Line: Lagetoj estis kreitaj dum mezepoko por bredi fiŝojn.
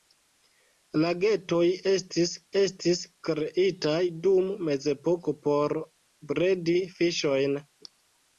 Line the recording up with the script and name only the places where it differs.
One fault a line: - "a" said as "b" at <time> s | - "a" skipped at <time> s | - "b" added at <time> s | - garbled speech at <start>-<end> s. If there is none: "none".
- "estis" added at 2.6 s